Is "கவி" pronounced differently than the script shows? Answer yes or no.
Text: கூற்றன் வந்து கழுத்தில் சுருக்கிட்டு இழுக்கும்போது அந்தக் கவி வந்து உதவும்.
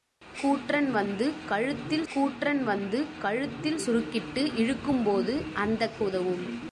yes